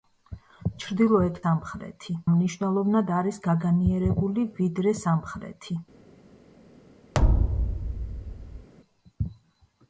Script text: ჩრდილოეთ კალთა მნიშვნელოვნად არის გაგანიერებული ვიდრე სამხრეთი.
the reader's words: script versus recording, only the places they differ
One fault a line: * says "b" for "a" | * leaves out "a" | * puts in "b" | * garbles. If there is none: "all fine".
* says "სამხრეთი" for "კალთა"